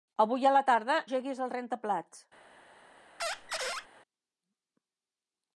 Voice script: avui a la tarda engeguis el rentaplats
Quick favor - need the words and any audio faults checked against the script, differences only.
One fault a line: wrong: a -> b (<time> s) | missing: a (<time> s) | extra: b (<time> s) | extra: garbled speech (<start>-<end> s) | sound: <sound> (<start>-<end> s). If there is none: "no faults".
sound: squeak (3.2-3.9 s)